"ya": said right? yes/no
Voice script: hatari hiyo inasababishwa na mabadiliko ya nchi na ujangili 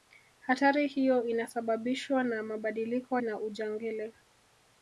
no